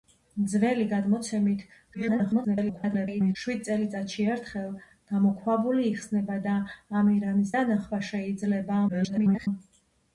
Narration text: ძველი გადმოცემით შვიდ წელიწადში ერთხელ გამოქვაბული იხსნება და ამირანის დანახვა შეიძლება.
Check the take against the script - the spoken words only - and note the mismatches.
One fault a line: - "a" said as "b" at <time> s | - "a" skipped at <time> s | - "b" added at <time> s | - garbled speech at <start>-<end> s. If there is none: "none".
- garbled speech at 1.9-3.4 s
- garbled speech at 8.9-9.5 s